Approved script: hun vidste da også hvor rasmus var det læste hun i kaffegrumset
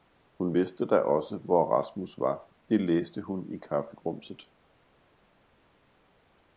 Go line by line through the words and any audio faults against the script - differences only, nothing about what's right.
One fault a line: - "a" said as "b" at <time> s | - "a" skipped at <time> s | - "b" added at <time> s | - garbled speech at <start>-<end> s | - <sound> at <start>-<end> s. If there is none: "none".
none